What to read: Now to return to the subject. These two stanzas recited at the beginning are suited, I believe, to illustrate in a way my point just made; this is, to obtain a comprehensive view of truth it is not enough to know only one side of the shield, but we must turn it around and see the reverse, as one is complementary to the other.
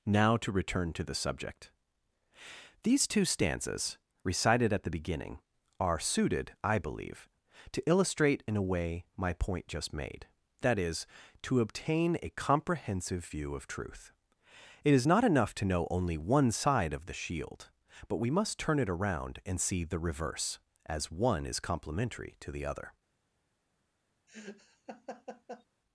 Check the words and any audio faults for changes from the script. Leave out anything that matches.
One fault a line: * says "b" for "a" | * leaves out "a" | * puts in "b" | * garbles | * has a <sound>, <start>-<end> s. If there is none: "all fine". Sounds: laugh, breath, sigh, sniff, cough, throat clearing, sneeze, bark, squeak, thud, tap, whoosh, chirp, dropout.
* says "that" for "this"
* has a laugh, 24.3-25.6 s